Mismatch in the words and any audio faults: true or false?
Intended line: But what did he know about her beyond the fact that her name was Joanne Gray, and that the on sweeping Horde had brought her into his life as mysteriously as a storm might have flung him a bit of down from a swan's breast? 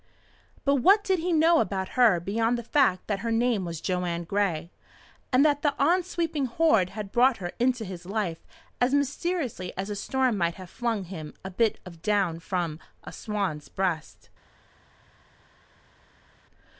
false